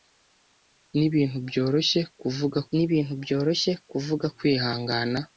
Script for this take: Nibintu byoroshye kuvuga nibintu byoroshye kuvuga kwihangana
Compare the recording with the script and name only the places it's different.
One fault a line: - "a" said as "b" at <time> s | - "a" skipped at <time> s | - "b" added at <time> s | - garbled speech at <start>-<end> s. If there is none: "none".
none